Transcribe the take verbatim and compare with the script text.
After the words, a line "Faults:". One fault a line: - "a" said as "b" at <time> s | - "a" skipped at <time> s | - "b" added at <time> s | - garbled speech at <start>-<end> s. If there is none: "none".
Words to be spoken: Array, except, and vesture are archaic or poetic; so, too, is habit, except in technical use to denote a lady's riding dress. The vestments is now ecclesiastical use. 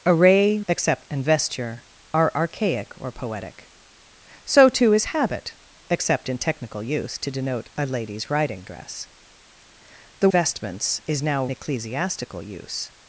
Array, except, and vesture are archaic or poetic; so, too, is habit, except in technical use to denote a lady's riding dress. The vestments is now ecclesiastical use.
Faults:
none